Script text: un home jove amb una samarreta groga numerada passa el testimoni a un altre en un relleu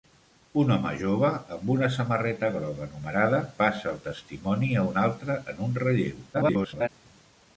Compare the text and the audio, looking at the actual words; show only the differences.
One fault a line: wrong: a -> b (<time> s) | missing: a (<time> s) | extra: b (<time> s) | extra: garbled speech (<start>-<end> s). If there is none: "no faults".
extra: garbled speech (6.3-6.9 s)